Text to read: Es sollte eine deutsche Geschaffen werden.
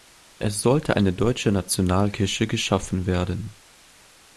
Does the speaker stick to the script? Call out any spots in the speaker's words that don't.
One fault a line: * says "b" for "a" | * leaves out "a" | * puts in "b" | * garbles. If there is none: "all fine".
* puts in "Nationalkirche"